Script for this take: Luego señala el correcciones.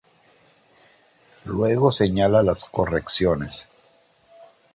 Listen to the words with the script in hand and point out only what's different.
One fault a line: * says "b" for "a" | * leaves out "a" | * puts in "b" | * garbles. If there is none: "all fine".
* says "las" for "el"